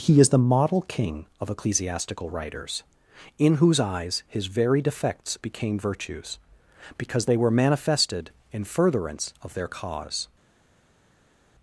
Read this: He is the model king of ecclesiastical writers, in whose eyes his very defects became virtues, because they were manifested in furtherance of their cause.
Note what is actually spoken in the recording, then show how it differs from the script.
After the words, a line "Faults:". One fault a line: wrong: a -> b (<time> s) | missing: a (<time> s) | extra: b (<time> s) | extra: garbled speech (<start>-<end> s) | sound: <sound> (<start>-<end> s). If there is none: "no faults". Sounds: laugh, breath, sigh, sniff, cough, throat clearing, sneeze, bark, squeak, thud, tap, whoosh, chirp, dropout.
He is the model king of ecclesiastical writers, in whose eyes his very defects became virtues, because they were manifested in furtherance of their cause.
Faults:
no faults